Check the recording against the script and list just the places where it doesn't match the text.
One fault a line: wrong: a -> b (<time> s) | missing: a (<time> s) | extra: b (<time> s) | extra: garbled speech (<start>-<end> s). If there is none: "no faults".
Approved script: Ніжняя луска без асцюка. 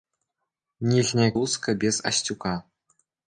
no faults